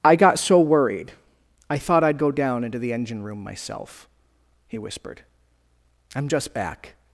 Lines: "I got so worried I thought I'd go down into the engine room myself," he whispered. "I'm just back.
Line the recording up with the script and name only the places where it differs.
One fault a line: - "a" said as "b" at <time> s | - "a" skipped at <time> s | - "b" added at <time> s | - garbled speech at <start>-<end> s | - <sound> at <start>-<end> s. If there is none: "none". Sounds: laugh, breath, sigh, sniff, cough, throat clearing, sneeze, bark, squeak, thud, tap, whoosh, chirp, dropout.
none